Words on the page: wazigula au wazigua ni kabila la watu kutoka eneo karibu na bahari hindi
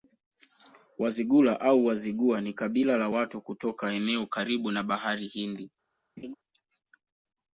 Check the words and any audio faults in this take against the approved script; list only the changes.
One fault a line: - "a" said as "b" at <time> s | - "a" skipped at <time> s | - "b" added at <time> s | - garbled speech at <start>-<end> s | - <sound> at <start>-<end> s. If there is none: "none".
- laugh at 6.2-6.3 s